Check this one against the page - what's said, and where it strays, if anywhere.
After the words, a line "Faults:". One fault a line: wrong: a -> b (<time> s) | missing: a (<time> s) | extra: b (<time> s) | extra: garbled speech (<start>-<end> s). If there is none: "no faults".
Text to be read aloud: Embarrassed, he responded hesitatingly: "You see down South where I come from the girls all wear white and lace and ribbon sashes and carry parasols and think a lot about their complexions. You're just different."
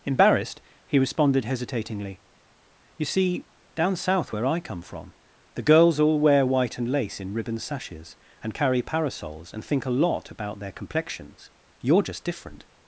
Embarrassed, he responded hesitatingly: "You see down South where I come from the girls all wear white and lace in ribbon sashes and carry parasols and think a lot about their complexions. You're just different."
Faults:
wrong: and -> in (7.2 s)